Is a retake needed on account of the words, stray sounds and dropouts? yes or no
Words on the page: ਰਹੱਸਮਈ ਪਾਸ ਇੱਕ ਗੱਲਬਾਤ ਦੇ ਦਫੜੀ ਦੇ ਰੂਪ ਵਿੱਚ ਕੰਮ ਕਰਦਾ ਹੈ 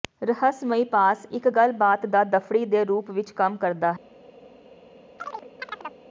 yes